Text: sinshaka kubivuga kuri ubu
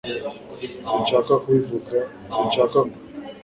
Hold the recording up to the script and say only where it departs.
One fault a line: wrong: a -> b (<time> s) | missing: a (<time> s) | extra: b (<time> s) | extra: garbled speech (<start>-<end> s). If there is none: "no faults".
wrong: kuri -> sinshaka (2.3 s)